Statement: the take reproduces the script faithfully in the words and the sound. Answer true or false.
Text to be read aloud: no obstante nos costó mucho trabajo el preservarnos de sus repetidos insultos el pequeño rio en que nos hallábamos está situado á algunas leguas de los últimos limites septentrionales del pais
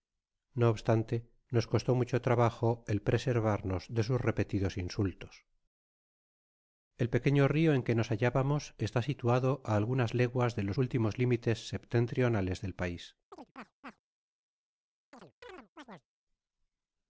false